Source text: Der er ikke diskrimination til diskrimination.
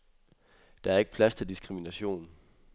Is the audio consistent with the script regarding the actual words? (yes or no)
no